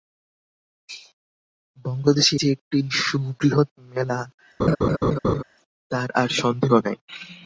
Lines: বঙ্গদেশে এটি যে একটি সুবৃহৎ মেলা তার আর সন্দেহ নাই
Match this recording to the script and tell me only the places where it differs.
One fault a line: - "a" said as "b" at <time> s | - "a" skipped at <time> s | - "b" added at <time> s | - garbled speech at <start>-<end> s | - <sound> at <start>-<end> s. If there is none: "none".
- "এটি" skipped at 2.3 s
- laugh at 4.6-5.4 s